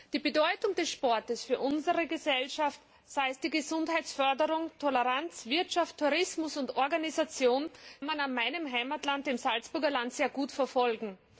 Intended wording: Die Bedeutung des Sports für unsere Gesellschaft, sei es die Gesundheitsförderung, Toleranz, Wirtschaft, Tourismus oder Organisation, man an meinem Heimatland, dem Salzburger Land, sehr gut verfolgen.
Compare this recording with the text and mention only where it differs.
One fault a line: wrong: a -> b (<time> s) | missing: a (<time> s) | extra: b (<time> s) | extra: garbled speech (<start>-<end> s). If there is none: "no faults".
no faults